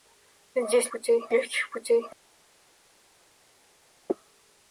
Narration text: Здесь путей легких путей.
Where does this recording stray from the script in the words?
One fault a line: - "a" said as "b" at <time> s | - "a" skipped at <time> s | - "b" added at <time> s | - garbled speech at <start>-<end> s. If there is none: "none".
none